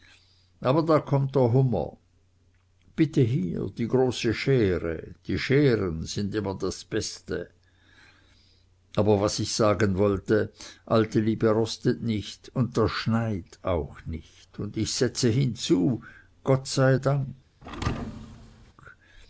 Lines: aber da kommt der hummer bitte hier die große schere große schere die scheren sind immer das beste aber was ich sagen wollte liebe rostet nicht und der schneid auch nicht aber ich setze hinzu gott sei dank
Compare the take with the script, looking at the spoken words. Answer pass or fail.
fail